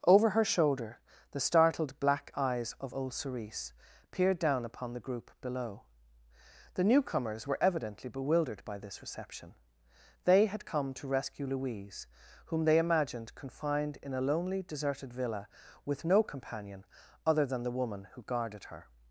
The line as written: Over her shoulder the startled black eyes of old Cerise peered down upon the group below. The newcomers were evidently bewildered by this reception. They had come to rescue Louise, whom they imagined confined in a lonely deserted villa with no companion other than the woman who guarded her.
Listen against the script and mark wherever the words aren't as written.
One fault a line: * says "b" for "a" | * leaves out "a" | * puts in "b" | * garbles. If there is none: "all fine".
all fine